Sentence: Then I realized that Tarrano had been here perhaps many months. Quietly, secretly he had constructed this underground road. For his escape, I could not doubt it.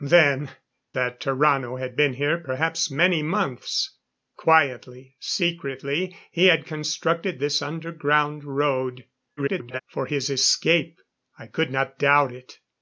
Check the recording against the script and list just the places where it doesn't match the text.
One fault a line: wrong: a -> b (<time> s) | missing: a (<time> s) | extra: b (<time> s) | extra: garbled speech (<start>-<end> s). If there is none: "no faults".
missing: I realized (0.5 s)
extra: garbled speech (9.4-9.8 s)